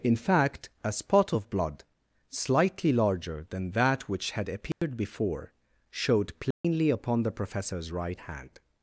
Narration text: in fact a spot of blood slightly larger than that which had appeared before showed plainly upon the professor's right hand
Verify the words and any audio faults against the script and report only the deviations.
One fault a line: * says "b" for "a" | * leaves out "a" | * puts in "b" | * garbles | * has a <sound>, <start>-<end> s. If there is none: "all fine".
* has a dropout, 4.7-4.8 s
* has a dropout, 6.5-6.6 s